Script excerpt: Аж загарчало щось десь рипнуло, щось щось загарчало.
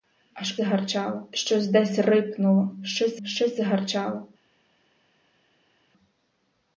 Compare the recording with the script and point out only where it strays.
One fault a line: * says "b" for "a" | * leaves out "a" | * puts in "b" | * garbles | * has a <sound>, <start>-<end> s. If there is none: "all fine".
all fine